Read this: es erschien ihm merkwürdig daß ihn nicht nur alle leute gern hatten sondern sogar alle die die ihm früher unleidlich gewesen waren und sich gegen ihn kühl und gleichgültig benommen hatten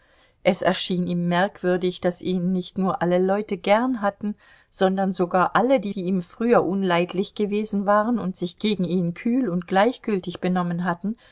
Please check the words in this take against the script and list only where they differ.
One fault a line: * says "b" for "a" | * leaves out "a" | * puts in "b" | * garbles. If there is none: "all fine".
all fine